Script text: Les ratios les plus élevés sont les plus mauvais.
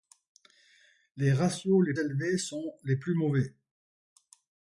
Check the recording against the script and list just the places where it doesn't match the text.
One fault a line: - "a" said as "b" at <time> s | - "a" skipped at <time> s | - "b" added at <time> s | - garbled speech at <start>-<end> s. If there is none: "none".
- "plus" skipped at 1.9 s